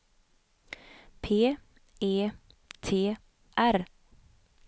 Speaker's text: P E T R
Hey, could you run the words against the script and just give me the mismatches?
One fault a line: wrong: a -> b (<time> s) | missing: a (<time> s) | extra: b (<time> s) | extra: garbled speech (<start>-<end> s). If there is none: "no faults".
no faults